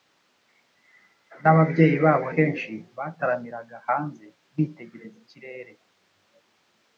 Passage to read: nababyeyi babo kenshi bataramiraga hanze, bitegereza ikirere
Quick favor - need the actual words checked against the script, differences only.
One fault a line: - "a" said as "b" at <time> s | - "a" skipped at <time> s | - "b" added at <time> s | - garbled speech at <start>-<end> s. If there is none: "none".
none